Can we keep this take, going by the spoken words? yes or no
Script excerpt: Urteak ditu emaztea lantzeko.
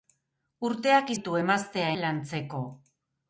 yes